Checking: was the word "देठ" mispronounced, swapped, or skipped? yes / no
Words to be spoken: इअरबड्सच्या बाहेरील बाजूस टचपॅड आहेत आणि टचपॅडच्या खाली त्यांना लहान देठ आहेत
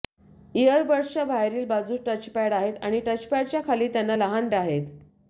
yes